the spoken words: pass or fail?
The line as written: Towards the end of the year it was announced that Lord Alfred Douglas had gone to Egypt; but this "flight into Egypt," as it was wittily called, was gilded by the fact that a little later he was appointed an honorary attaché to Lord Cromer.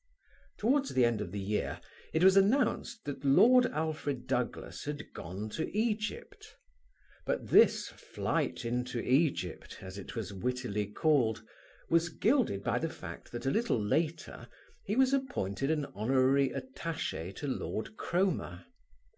pass